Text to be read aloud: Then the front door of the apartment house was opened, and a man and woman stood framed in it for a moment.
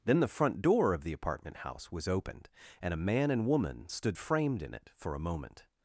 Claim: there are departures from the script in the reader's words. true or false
false